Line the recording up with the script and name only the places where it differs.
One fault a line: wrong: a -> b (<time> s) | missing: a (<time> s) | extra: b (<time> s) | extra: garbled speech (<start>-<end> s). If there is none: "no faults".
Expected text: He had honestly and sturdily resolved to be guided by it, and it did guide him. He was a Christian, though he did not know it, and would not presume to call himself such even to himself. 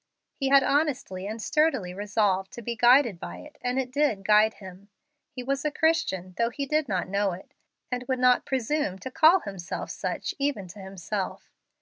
no faults